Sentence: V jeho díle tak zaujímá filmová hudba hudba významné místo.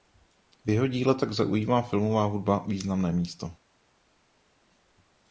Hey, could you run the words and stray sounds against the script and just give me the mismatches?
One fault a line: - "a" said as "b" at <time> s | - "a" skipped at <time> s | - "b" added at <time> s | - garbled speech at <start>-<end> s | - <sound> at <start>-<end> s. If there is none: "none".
- "hudba" skipped at 2.7 s